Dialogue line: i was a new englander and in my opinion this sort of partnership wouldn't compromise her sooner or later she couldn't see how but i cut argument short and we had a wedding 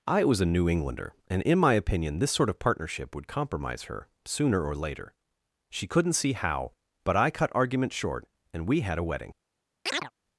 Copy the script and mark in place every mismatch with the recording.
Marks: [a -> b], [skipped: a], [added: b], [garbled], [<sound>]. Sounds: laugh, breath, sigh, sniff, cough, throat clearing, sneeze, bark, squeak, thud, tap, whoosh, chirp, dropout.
i was a new englander and in my opinion this sort of partnership [wouldn't -> would] compromise her sooner or later she couldn't see how but i cut argument short and we had a wedding [chirp]